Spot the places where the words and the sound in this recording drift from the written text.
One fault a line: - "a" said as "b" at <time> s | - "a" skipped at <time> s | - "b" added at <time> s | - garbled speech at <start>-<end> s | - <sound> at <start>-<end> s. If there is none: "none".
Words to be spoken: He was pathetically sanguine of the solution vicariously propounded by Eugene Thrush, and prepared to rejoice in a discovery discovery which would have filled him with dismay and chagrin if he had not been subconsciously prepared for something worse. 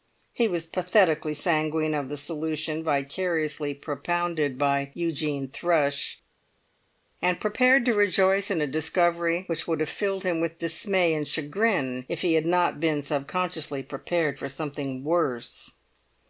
- "discovery" skipped at 9.4 s